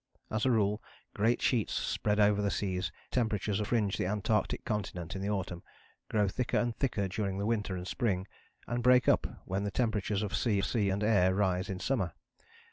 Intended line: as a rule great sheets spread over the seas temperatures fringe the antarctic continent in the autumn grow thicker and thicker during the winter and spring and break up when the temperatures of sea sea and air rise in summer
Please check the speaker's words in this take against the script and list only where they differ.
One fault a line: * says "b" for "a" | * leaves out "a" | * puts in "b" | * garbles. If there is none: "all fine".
all fine